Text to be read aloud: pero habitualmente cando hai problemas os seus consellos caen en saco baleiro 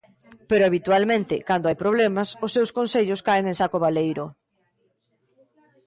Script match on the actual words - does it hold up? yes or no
yes